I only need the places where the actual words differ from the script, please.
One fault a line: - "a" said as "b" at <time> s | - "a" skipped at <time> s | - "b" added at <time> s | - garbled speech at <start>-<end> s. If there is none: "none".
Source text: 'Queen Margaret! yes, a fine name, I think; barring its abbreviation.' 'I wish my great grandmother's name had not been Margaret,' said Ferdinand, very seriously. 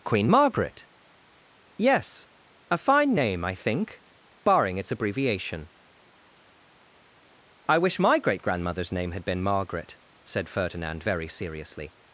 - "not" skipped at 9.2 s